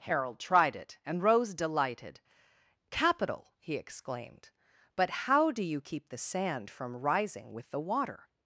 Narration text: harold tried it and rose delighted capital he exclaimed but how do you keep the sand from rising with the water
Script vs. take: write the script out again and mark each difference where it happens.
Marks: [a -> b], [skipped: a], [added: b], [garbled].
harold tried it and rose delighted capital he exclaimed but how do you keep the sand from rising with the water